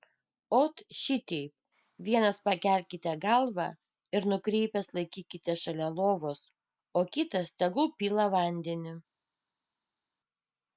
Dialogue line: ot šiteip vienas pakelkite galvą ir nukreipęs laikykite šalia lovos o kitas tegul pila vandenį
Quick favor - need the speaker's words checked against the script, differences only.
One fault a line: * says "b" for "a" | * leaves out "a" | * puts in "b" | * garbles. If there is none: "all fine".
all fine